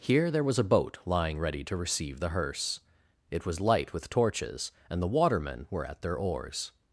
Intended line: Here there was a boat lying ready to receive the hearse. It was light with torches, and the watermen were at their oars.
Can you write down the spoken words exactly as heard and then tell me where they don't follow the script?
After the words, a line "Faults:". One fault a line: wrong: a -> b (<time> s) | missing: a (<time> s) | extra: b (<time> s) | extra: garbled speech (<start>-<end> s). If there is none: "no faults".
Here there was a boat lying ready to receive the hearse. It was light with torches, and the watermen were at their oars.
Faults:
no faults